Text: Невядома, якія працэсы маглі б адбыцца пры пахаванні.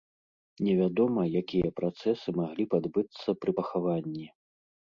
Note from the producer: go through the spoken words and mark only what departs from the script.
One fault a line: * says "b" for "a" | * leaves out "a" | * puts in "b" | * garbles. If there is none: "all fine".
all fine